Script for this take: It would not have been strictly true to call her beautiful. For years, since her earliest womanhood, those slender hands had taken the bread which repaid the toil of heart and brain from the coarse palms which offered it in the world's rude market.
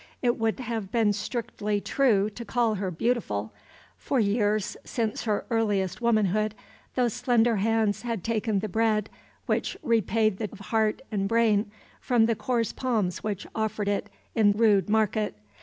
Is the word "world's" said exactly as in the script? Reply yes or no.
no